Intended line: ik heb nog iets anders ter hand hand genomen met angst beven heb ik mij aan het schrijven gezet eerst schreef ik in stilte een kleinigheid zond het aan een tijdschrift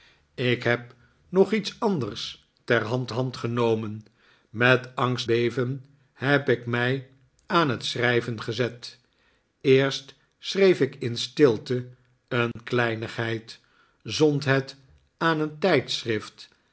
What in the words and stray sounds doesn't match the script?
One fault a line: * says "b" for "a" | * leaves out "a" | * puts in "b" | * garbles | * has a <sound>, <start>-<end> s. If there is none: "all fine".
* has a dropout, 12.5-12.6 s